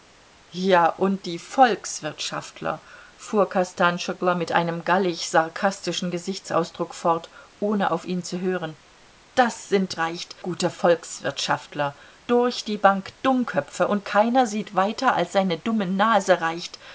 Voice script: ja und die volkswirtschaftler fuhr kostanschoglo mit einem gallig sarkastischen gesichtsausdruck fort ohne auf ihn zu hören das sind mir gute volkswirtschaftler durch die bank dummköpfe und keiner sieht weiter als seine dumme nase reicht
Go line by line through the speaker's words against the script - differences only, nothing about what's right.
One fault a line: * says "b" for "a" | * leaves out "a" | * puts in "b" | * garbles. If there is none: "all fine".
* says "reicht" for "mir"